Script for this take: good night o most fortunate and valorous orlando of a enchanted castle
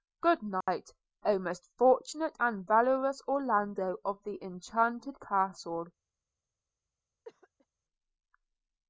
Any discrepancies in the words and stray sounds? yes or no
yes